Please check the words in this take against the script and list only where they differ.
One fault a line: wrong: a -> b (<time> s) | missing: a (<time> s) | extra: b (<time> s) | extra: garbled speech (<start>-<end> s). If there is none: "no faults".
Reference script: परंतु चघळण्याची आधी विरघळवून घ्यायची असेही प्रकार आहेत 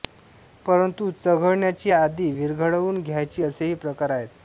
no faults